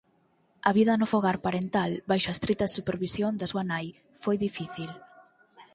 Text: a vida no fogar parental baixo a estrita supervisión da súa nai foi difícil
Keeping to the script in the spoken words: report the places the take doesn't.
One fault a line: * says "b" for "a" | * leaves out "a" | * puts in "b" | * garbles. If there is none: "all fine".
all fine